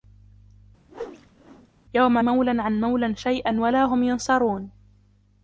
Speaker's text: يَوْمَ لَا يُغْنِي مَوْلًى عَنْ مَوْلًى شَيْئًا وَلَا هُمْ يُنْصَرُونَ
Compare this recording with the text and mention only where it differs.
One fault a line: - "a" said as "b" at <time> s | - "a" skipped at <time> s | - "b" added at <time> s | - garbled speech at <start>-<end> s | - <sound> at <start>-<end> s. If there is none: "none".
- whoosh at 0.9-1.7 s
- "لَا يُغْنِي" skipped at 2.2 s